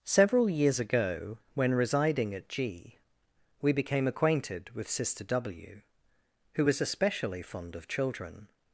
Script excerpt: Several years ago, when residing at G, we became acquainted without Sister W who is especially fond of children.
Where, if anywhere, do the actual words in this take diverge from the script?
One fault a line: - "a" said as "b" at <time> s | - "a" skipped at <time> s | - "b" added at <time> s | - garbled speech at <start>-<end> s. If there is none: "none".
- "without" said as "with" at 4.7 s
- "is" said as "was" at 6.6 s